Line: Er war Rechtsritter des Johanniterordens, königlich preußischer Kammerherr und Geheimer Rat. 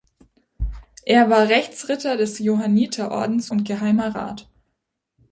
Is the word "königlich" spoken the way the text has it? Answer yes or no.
no